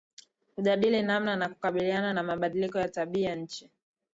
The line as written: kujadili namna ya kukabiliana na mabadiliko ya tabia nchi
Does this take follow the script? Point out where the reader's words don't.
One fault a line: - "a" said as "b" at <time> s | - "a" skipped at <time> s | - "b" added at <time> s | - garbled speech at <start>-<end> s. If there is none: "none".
none